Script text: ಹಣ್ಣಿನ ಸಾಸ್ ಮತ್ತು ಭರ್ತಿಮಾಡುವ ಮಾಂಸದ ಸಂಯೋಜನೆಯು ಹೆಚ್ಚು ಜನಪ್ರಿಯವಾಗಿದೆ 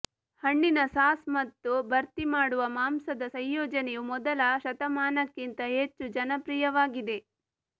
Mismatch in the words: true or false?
true